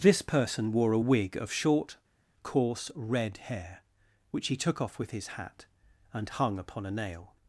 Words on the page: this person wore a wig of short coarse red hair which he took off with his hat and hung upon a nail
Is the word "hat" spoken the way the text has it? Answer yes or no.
yes